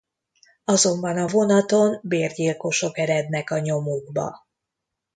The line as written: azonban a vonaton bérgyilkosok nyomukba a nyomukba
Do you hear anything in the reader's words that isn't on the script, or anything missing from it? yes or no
yes